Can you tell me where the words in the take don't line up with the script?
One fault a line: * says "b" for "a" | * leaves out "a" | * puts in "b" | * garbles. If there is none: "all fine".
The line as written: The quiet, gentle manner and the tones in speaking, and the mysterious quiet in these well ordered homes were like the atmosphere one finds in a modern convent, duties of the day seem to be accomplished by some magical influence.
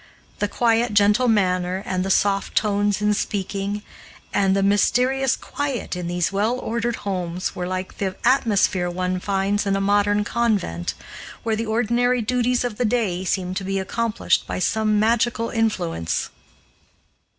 * puts in "soft"
* puts in "where the ordinary"